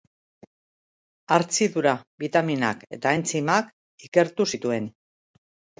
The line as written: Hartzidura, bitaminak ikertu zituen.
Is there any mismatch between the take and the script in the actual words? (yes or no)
yes